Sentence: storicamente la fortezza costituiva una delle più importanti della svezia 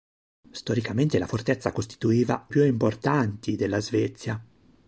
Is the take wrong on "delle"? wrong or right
wrong